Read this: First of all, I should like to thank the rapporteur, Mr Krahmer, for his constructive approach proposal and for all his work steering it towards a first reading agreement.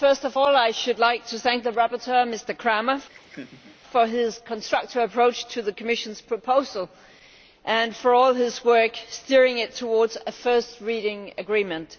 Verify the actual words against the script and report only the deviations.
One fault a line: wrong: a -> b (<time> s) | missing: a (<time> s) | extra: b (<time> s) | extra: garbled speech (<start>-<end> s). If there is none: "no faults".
extra: to the Commission's (5.5 s)